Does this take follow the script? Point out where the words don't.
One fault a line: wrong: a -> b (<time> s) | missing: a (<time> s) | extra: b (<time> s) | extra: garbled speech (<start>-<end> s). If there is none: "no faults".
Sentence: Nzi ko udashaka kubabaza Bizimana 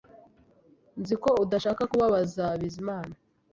no faults